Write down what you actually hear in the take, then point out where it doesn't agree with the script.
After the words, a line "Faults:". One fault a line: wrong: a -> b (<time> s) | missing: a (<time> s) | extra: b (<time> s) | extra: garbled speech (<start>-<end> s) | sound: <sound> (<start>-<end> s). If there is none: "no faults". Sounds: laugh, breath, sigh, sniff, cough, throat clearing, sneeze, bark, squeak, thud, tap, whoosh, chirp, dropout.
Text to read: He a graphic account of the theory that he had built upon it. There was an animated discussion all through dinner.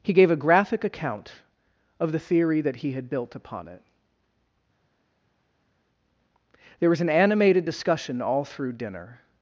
He gave a graphic account of the theory that he had built upon it. There was an animated discussion all through dinner.
Faults:
extra: gave (0.1 s)